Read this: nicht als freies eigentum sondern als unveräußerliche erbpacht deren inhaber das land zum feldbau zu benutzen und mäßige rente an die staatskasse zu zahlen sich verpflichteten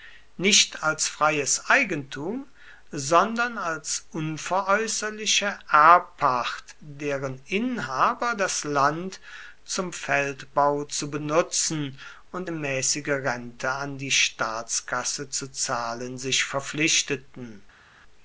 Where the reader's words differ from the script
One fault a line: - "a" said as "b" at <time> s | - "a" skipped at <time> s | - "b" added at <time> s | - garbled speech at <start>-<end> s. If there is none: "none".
none